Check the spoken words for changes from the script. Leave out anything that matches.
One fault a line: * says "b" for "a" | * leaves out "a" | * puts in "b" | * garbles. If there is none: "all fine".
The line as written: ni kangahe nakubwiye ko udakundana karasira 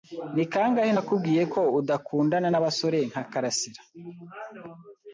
* puts in "n'abasore nka"